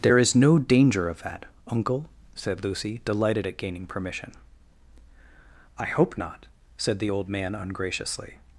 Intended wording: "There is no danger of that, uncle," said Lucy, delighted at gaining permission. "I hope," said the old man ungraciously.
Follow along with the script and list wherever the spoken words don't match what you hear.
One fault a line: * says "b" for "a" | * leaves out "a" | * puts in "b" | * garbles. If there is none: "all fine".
* puts in "not"